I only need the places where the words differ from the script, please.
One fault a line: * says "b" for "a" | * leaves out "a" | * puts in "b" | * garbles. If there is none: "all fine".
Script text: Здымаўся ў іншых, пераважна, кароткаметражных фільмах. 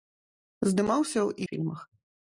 * leaves out "іншых пераважна кароткаметражных"